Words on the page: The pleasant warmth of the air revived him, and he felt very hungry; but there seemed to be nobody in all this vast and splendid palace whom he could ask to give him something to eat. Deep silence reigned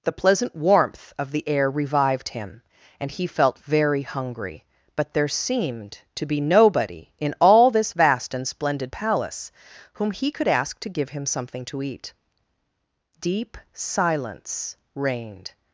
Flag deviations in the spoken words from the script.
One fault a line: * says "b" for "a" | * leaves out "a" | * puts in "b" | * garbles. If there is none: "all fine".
all fine